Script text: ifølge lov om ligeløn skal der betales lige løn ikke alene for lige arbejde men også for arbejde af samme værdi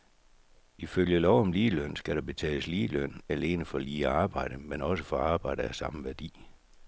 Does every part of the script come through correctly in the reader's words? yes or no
no